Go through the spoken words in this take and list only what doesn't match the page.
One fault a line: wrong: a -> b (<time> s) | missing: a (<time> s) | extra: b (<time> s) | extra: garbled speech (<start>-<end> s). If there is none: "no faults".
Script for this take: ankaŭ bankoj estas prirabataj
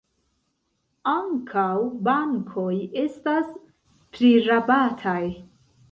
no faults